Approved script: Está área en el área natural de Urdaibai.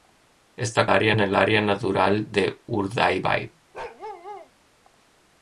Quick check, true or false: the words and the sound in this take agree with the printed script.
false